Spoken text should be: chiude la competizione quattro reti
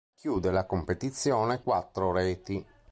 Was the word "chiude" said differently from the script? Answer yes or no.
no